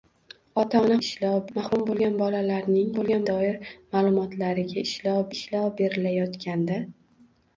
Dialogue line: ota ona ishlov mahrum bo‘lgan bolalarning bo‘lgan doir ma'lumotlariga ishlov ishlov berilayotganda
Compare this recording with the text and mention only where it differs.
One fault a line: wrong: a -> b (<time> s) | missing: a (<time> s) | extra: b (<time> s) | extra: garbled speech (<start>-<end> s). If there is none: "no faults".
no faults